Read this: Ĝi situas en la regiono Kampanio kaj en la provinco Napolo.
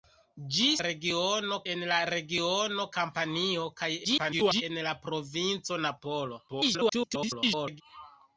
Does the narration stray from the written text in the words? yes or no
yes